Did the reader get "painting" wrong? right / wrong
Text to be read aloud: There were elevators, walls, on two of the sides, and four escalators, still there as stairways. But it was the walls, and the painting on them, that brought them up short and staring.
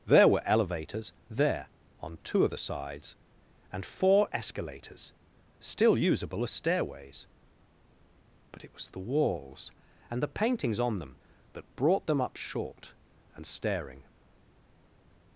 wrong